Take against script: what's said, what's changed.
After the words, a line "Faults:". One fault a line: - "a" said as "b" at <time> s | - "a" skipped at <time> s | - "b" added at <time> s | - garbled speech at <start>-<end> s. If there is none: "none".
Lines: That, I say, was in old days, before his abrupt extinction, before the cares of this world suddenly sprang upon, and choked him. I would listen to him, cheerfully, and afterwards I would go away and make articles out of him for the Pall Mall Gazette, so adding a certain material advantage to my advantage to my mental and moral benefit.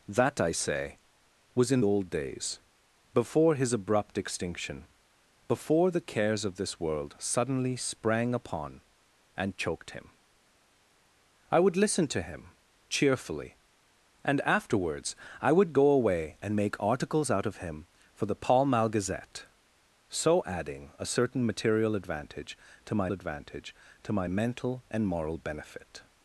That, I say, was in old days, before his abrupt extinction, before the cares of this world suddenly sprang upon, and choked him. I would listen to him, cheerfully, and afterwards I would go away and make articles out of him for the Pall Mall Gazette, so adding a certain material advantage to my advantage to my mental and moral benefit.
Faults:
none